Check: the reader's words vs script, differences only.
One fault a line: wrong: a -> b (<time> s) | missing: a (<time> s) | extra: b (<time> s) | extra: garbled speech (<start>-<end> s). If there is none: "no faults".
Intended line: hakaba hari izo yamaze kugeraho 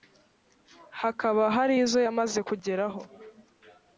no faults